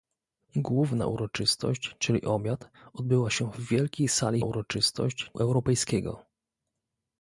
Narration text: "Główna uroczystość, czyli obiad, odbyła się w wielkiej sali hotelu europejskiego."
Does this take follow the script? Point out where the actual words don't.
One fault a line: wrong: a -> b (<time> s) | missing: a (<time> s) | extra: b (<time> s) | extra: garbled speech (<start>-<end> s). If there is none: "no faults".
wrong: hotelu -> uroczystość (4.4 s)